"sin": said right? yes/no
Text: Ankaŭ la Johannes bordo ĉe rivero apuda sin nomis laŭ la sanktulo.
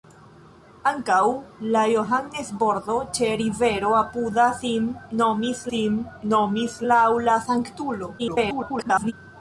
yes